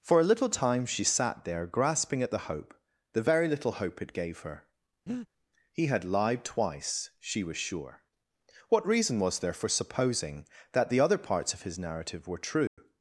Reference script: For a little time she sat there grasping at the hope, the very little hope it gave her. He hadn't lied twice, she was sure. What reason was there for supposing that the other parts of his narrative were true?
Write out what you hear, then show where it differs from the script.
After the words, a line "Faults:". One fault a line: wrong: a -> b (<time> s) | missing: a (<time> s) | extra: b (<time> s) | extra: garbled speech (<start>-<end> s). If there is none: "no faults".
For a little time she sat there grasping at the hope, the very little hope it gave her. He had lied twice, she was sure. What reason was there for supposing that the other parts of his narrative were true?
Faults:
wrong: hadn't -> had (5.9 s)